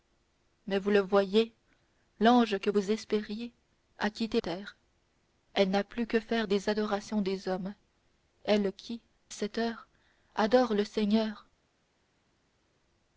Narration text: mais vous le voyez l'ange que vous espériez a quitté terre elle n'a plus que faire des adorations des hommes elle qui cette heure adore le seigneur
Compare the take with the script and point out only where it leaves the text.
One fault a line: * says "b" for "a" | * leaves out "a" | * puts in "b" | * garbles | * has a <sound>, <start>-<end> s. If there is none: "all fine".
all fine